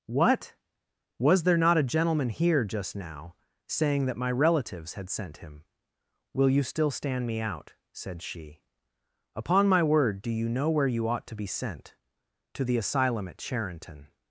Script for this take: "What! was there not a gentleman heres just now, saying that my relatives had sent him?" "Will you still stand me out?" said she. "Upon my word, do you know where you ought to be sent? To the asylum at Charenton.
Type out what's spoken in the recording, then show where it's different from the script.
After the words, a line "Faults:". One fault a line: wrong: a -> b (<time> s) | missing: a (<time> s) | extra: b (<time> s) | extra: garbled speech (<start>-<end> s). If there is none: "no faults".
"What! was there not a gentleman here just now, saying that my relatives had sent him?" "Will you still stand me out?" said she. "Upon my word, do you know where you ought to be sent? To the asylum at Charenton.
Faults:
wrong: heres -> here (2.3 s)